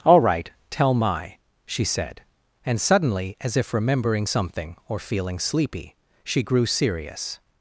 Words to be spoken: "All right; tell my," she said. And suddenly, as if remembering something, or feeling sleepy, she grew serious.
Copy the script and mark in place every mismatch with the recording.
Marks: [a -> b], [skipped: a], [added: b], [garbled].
"All right; tell my," she said. And suddenly, as if remembering something, or feeling sleepy, she grew serious.